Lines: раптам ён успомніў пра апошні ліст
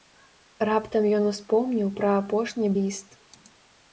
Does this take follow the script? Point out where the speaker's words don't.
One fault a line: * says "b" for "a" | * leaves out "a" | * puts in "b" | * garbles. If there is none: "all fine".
all fine